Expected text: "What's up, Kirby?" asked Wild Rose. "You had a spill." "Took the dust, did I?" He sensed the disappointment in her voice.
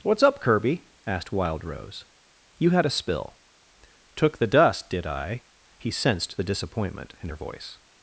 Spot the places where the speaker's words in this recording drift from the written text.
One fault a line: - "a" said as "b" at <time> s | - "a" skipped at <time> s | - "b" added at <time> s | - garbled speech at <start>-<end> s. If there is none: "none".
none